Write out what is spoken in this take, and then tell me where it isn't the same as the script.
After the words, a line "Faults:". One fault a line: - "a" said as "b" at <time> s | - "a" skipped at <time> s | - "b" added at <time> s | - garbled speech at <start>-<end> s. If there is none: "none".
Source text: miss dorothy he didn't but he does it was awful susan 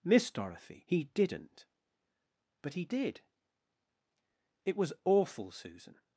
miss dorothy he didn't but he did it was awful susan
Faults:
- "does" said as "did" at 2.9 s